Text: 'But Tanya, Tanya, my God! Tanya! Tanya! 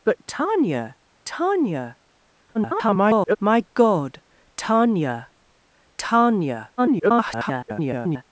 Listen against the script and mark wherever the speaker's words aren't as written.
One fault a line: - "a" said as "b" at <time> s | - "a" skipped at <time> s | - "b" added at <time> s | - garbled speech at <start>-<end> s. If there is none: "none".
- garbled speech at 2.5-3.4 s
- garbled speech at 6.8-8.2 s